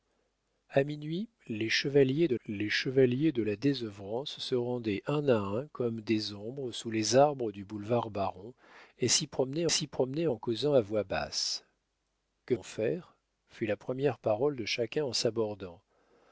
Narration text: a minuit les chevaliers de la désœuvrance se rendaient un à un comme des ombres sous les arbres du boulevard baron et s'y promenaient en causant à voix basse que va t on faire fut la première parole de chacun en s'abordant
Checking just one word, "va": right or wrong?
wrong